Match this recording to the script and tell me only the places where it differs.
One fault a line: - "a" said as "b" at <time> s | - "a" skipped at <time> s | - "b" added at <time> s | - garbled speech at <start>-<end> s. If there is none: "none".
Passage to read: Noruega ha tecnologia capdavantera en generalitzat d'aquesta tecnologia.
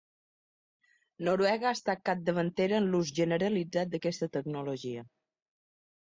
- "tecnologia" said as "estat" at 1.8 s
- "l'ús" added at 2.9 s